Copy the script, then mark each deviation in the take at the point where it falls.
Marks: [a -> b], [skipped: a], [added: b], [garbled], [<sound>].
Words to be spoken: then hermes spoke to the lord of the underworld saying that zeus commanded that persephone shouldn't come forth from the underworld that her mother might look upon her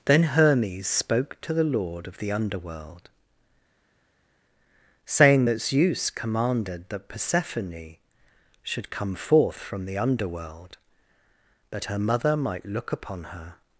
then hermes spoke to the lord of the underworld saying that zeus commanded that persephone [shouldn't -> should] come forth from the underworld that her mother might look upon her